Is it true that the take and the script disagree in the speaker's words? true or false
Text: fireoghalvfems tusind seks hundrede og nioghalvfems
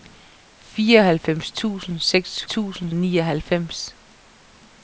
true